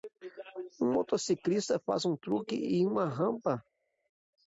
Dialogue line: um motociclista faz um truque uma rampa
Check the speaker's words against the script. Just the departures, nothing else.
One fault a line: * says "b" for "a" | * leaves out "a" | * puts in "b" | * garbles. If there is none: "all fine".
* puts in "em"